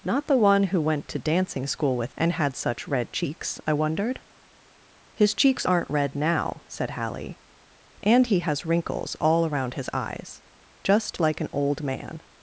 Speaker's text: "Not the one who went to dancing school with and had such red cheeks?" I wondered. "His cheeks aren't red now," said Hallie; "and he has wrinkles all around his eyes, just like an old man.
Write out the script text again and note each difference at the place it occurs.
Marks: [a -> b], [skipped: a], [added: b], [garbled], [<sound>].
"Not the one who went to dancing school with and had such red cheeks?" I wondered. "His cheeks aren't red now," said Hallie; "and he has wrinkles all around his eyes, just like an old man.